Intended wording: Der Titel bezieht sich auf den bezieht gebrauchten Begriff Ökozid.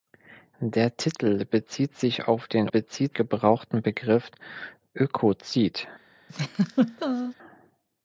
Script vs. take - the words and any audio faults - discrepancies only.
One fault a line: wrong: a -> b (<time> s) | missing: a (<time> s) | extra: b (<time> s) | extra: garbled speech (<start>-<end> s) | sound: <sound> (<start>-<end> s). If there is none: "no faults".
sound: laugh (6.3-7.3 s)